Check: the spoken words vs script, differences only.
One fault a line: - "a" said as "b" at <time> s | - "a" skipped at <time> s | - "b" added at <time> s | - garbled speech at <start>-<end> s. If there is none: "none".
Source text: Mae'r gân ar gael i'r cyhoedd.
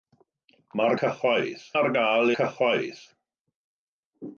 - "gân" said as "cyhoedd" at 1.0 s
- "i'r" skipped at 2.3 s